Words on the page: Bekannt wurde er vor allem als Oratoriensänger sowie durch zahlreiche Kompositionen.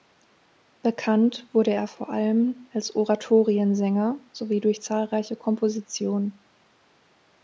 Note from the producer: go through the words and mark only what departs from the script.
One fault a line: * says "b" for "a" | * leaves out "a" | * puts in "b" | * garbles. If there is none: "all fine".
all fine